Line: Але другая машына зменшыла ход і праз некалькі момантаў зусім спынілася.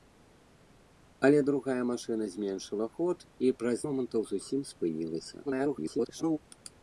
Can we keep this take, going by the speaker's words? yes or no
no